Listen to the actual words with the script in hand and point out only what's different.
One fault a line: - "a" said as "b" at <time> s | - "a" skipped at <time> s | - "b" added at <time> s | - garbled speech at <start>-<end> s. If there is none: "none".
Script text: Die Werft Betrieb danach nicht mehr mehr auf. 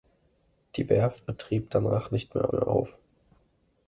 none